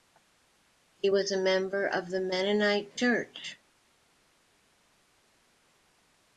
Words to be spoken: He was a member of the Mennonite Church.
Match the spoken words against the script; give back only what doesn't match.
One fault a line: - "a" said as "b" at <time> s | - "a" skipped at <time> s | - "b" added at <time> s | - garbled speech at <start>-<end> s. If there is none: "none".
none